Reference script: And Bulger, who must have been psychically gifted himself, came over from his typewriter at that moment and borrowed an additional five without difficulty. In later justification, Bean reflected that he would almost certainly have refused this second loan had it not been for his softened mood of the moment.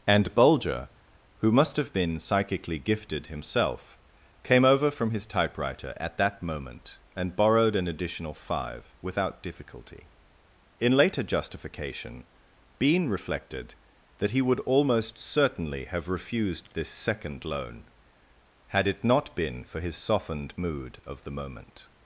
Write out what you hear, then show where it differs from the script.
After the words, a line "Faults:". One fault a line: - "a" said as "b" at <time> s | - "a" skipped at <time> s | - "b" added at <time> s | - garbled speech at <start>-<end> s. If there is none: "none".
And Bulger, who must have been psychically gifted himself, came over from his typewriter at that moment and borrowed an additional five without difficulty. In later justification, Bean reflected that he would almost certainly have refused this second loan had it not been for his softened mood of the moment.
Faults:
none